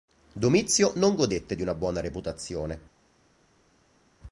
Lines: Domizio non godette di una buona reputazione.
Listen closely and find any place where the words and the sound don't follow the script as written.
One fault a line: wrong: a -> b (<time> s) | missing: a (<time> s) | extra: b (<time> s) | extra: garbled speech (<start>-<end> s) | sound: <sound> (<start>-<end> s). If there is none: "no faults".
no faults